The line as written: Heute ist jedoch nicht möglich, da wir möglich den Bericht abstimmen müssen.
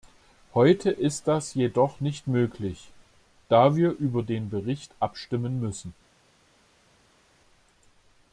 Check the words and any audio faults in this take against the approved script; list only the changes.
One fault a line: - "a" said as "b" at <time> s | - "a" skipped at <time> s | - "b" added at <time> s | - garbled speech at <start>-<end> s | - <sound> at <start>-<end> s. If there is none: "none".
- "das" added at 1.3 s
- "möglich" said as "über" at 3.9 s